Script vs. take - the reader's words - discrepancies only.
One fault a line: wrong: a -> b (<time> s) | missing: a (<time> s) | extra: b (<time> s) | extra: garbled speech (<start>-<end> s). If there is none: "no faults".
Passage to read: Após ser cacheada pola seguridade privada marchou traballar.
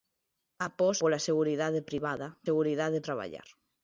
missing: ser cacheada (1.0 s)
wrong: marchou -> seguridade (2.5 s)